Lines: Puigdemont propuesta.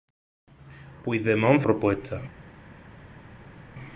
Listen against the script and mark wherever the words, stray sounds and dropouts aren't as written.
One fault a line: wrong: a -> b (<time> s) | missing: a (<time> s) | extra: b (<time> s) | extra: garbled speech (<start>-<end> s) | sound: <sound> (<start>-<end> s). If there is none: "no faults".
no faults